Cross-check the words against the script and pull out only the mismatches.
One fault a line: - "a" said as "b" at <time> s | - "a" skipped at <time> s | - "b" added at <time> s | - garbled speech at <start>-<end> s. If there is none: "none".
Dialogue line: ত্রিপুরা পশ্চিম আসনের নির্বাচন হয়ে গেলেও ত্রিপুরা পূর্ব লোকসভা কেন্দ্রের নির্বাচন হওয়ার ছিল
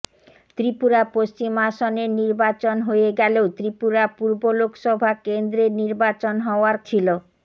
none